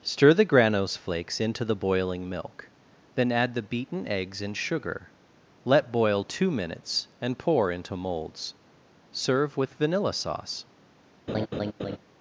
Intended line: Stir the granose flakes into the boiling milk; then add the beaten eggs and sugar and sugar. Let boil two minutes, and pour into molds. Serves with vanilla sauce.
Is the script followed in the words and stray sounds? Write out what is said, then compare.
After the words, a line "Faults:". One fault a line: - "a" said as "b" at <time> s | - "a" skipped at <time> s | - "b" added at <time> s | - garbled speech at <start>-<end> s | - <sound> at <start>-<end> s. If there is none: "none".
Stir the granose flakes into the boiling milk; then add the beaten eggs and sugar. Let boil two minutes, and pour into molds. Serve with vanilla sauce.
Faults:
- "and sugar" skipped at 5.1 s
- "Serves" said as "Serve" at 9.1 s
- laugh at 11.3-12.0 s